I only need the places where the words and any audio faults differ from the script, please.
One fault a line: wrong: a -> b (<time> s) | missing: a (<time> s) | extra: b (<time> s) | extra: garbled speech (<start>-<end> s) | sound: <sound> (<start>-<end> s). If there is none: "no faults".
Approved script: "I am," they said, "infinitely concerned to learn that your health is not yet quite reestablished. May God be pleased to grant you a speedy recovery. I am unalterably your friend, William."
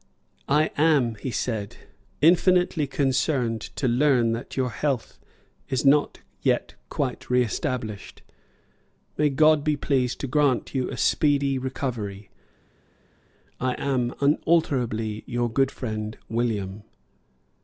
wrong: they -> he (1.2 s)
extra: good (15.5 s)